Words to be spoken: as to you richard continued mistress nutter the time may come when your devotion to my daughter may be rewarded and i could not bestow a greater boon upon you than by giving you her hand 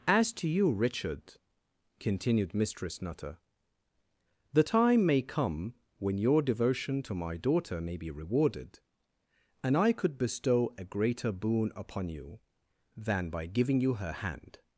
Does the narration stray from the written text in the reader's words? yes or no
yes